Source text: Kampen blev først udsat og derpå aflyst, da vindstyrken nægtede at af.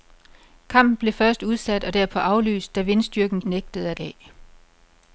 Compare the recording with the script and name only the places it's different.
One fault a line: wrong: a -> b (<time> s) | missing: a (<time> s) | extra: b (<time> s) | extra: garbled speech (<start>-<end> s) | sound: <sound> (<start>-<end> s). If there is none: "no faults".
no faults